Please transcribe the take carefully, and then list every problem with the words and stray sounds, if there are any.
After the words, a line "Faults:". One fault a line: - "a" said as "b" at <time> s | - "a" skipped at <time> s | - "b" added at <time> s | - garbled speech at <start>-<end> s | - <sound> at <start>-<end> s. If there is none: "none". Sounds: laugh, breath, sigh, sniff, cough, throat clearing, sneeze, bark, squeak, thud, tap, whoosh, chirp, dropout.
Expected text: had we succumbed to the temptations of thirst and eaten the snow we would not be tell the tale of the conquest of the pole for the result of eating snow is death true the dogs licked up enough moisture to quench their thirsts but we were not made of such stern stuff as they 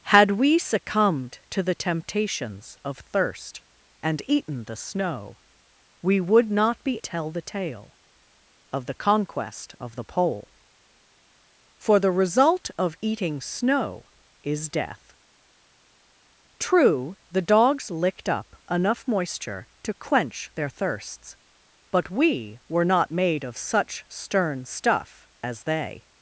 had we succumbed to the temptations of thirst and eaten the snow we would not be tell the tale of the conquest of the pole for the result of eating snow is death true the dogs licked up enough moisture to quench their thirsts but we were not made of such stern stuff as they
Faults:
none